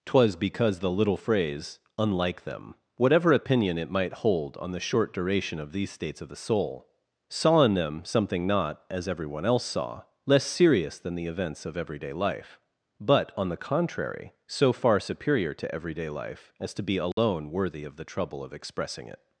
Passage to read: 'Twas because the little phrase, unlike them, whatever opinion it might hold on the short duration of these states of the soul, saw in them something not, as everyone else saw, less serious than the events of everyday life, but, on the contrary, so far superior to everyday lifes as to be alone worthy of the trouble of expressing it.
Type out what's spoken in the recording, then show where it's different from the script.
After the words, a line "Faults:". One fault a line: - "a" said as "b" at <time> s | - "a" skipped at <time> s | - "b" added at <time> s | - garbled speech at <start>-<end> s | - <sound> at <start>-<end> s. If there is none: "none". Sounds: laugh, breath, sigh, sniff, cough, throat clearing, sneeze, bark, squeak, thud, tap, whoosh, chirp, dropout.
'Twas because the little phrase, unlike them, whatever opinion it might hold on the short duration of these states of the soul, saw in them something not, as everyone else saw, less serious than the events of everyday life, but, on the contrary, so far superior to everyday life as to be alone worthy of the trouble of expressing it.
Faults:
- "lifes" said as "life" at 16.1 s
- dropout at 17.1-17.2 s